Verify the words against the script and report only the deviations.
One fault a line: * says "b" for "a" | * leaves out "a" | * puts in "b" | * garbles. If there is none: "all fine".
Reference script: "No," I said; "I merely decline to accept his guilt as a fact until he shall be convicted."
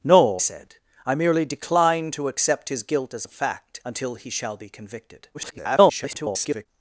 * leaves out "I"
* garbles